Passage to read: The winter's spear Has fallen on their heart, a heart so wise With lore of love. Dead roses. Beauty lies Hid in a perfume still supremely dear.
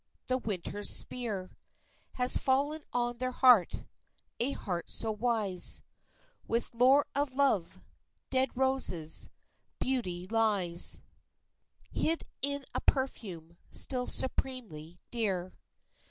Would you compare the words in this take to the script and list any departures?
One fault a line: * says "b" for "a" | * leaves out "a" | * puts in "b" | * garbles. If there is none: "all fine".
all fine